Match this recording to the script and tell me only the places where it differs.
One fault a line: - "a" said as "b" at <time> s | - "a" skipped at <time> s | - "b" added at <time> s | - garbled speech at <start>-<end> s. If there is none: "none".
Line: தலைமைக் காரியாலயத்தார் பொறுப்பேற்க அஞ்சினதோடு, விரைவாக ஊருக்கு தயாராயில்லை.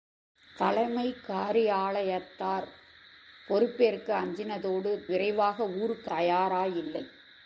none